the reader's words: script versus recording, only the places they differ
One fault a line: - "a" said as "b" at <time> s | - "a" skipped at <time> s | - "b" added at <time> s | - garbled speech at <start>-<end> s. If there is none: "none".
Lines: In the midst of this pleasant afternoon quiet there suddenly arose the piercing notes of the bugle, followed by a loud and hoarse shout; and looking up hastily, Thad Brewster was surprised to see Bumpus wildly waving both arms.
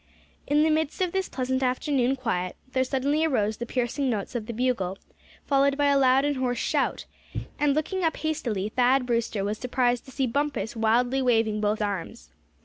none